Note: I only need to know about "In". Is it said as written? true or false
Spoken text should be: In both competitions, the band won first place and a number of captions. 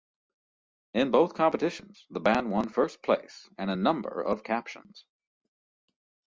true